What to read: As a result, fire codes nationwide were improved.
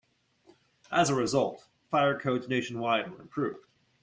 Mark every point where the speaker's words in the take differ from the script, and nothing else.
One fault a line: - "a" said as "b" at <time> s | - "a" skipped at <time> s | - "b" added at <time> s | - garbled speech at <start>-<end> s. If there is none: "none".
none